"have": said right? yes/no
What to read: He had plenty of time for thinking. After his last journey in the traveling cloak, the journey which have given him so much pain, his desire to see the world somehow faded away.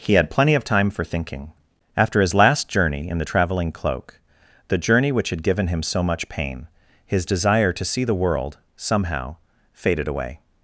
no